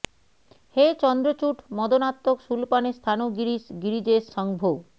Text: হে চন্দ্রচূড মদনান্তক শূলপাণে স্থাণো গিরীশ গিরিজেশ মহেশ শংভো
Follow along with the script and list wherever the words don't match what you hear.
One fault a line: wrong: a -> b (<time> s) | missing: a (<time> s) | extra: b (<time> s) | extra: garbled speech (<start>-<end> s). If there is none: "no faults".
missing: মহেশ (4.2 s)